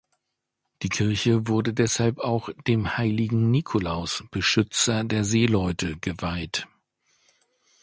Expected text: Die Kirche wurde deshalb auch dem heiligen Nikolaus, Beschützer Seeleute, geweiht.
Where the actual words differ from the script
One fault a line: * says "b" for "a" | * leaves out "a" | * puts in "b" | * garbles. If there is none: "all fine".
* puts in "der"